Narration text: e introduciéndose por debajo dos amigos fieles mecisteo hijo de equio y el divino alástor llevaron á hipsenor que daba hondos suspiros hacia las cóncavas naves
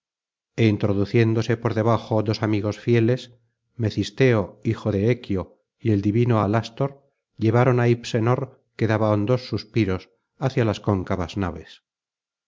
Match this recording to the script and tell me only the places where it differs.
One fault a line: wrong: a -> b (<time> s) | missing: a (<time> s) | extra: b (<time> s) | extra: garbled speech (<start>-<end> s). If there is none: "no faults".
no faults